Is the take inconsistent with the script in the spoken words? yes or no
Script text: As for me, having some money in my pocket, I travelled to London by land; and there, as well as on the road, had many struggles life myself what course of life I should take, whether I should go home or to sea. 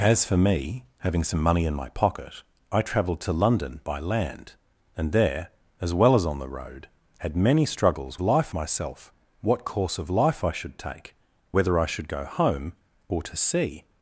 no